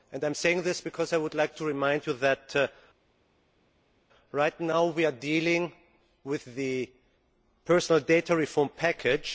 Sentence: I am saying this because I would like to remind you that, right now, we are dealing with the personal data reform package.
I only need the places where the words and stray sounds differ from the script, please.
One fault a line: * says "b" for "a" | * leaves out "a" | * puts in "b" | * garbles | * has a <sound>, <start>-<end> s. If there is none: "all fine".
all fine